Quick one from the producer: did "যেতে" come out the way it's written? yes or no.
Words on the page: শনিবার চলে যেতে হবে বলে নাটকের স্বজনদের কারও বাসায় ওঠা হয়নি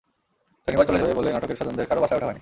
no